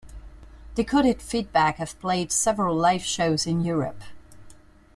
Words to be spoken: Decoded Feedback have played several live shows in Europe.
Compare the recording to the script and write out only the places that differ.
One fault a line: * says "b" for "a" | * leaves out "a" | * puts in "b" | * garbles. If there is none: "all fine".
all fine